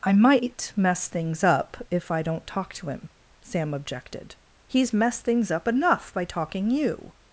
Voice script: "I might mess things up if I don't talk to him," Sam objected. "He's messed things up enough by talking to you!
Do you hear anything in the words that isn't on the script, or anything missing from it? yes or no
yes